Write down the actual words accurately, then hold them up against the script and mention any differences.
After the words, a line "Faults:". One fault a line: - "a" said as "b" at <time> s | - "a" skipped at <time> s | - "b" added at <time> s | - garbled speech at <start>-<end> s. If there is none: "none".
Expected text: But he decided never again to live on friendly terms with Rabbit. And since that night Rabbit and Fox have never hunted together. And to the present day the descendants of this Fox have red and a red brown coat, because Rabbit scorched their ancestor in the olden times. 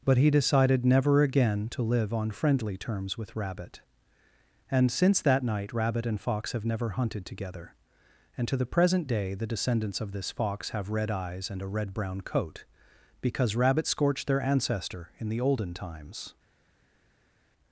But he decided never again to live on friendly terms with Rabbit. And since that night Rabbit and Fox have never hunted together. And to the present day the descendants of this Fox have red eyes and a red brown coat, because Rabbit scorched their ancestor in the olden times.
Faults:
- "eyes" added at 11.1 s